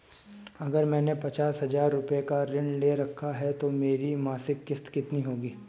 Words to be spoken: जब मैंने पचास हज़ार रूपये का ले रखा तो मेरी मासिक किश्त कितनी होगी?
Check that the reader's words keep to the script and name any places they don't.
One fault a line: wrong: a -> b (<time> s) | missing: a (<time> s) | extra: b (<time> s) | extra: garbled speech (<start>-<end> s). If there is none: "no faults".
wrong: जब -> अगर (0.6 s)
extra: ऋण (2.4 s)
extra: है (3.3 s)